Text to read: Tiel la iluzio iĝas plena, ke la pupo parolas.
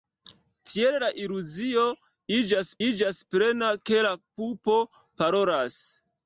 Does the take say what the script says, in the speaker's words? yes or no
no